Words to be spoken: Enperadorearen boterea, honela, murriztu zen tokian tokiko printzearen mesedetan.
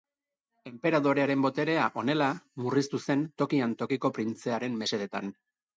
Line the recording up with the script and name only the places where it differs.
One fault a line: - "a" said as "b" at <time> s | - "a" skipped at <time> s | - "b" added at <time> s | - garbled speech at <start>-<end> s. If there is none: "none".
none